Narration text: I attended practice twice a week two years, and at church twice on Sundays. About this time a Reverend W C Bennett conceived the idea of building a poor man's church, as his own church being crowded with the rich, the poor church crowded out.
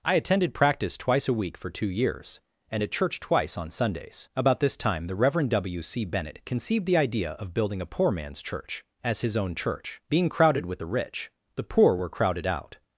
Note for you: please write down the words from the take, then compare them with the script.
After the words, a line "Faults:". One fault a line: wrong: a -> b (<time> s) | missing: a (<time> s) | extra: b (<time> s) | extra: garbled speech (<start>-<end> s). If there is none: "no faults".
I attended practice twice a week for two years, and at church twice on Sundays. About this time the Reverend W C Bennett conceived the idea of building a poor man's church, as his own church being crowded with the rich, the poor were crowded out.
Faults:
extra: for (1.6 s)
wrong: a -> the (5.0 s)
wrong: church -> were (12.0 s)